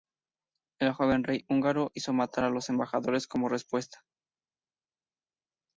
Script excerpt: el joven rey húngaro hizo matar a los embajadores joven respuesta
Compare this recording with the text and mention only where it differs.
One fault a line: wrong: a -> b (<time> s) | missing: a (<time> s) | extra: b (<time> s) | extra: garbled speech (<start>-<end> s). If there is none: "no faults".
wrong: joven -> como (3.3 s)